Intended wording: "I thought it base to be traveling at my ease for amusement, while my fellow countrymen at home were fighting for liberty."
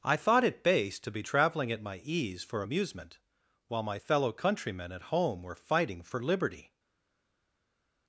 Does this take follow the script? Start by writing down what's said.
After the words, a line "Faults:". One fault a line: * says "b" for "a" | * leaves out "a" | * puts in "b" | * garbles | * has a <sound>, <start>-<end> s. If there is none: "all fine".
"I thought it base to be traveling at my ease for amusement, while my fellow countrymen at home were fighting for liberty."
Faults:
all fine